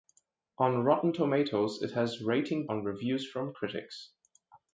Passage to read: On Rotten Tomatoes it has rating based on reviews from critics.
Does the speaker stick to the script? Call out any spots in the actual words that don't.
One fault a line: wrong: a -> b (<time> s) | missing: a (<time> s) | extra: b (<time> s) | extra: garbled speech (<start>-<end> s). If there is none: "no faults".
missing: based (2.6 s)